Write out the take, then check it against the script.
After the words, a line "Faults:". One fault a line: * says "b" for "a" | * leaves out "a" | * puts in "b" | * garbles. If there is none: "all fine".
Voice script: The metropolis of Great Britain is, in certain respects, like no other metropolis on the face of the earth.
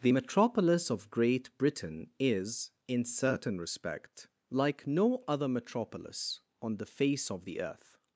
The metropolis of Great Britain is, in certain respect, like no other metropolis on the face of the earth.
Faults:
* says "respect" for "respects"